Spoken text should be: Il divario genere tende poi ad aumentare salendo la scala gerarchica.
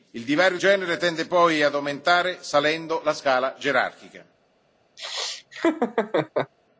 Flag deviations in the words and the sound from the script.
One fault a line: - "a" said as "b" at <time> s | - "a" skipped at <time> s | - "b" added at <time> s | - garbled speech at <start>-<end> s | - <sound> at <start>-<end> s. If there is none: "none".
- laugh at 5.0-6.5 s